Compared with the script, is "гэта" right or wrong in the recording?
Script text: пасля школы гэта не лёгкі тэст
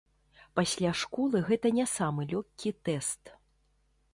right